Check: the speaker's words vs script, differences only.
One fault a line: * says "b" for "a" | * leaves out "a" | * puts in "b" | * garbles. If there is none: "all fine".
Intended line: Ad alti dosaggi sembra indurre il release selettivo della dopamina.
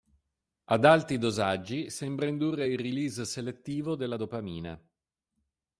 all fine